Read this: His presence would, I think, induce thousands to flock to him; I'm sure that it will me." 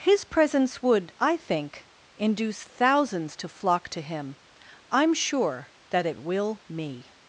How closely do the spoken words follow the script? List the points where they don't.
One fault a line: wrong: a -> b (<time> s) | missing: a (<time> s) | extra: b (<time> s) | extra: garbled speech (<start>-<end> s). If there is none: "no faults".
no faults